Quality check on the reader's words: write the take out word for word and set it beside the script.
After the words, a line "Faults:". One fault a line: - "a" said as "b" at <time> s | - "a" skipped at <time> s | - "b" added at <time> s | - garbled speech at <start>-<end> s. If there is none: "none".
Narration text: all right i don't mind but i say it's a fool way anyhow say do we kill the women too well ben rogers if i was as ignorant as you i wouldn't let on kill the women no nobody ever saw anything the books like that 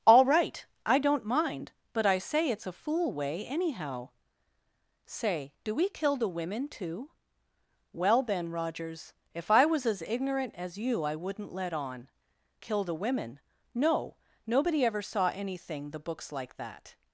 all right i don't mind but i say it's a fool way anyhow say do we kill the women too well ben rogers if i was as ignorant as you i wouldn't let on kill the women no nobody ever saw anything the books like that
Faults:
none